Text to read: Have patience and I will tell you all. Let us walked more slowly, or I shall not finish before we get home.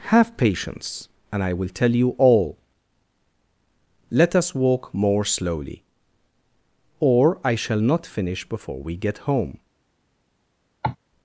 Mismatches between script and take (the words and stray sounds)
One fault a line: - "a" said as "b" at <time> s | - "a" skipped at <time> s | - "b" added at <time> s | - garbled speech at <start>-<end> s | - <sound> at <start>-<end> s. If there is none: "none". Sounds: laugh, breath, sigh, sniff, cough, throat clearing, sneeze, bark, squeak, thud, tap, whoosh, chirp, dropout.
- "walked" said as "walk" at 4.5 s
- cough at 10.8-11.0 s